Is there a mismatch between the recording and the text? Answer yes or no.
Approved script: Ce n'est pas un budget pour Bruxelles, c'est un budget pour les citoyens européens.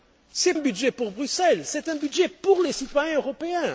yes